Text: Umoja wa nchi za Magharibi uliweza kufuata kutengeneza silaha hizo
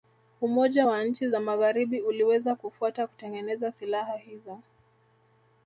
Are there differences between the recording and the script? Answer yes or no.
no